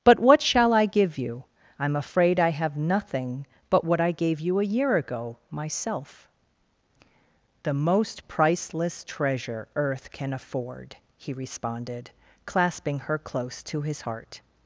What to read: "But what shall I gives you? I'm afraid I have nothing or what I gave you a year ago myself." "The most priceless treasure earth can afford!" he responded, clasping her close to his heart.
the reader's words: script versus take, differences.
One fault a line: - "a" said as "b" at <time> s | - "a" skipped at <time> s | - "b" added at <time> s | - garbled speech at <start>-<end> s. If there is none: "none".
- "gives" said as "give" at 0.9 s
- "or" said as "but" at 3.7 s